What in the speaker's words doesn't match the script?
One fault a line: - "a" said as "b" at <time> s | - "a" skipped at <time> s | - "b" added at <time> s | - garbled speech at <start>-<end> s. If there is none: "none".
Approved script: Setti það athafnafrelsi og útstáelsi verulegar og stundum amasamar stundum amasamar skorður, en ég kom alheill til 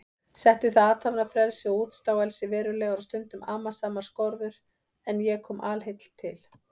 - "stundum amasamar" skipped at 4.1 s